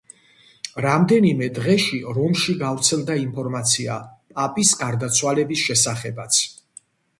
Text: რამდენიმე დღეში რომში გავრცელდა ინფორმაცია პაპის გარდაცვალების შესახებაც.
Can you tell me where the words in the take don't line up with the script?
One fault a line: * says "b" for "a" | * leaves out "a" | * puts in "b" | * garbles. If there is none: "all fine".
all fine